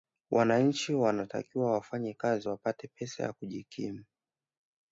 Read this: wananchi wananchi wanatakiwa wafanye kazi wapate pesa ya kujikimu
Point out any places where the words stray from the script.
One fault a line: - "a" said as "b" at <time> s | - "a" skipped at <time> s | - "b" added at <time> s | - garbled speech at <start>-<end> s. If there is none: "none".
- "wananchi" skipped at 0.9 s